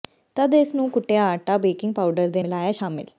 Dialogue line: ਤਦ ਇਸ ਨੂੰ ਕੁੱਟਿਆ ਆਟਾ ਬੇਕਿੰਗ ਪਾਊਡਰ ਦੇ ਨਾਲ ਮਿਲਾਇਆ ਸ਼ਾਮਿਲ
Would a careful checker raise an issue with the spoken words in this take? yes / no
yes